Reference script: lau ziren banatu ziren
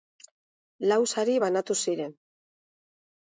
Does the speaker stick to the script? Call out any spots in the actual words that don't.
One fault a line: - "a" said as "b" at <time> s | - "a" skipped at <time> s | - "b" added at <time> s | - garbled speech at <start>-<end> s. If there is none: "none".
- "ziren" said as "sari" at 1.1 s